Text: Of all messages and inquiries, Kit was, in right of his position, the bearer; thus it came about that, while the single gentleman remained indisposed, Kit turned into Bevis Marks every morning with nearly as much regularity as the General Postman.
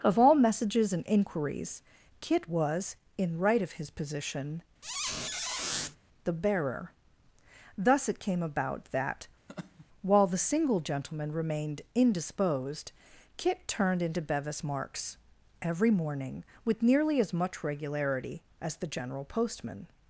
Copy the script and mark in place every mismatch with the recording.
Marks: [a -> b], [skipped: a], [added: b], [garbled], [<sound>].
Of all messages and inquiries, Kit was, in right of his position, [squeak] the bearer; thus it came about that, [laugh] while the single gentleman remained indisposed, Kit turned into Bevis Marks every morning with nearly as much regularity as the General Postman.